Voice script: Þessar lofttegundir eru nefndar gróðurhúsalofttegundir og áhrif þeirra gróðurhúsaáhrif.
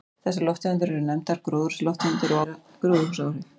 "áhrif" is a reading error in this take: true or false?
true